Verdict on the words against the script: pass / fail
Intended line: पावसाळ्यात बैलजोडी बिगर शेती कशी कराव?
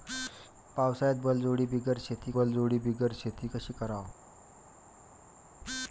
fail